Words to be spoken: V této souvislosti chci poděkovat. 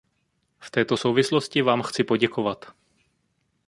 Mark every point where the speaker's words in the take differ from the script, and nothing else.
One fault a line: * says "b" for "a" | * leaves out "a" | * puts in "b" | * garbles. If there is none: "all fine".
* puts in "vám"